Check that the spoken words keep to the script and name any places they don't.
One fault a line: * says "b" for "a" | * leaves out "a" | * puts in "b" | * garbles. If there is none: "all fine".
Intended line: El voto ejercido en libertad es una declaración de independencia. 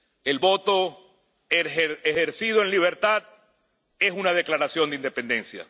all fine